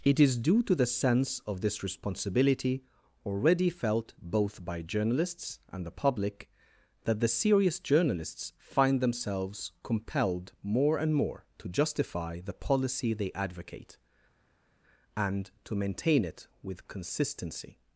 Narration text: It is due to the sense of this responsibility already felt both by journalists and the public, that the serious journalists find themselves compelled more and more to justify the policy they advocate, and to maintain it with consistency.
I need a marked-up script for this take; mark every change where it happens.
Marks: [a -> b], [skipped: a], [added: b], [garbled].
It is due to the sense of this responsibility already felt both by journalists and the public, that the serious journalists find themselves compelled more and more to justify the policy they advocate, and to maintain it with consistency.